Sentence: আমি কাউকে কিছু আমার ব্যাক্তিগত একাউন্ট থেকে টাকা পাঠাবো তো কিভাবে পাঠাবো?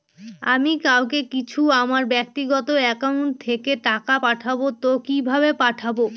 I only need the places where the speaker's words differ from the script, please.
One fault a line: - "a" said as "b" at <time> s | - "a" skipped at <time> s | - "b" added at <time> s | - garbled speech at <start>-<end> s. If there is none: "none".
none